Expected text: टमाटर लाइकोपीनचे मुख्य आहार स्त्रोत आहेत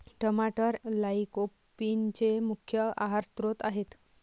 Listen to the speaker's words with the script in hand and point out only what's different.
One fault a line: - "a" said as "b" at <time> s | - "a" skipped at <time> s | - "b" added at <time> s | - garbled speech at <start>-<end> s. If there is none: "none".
none